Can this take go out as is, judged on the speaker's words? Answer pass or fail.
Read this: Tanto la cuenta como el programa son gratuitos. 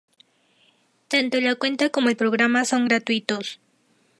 pass